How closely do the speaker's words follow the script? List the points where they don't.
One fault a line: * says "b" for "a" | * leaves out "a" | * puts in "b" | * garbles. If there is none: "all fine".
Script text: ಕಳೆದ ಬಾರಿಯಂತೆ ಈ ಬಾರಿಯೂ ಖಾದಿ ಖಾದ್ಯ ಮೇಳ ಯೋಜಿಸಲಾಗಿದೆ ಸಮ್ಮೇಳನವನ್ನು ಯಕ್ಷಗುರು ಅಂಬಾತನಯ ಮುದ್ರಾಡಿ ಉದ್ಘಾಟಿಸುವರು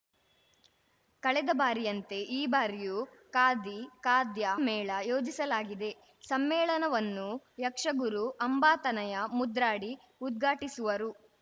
all fine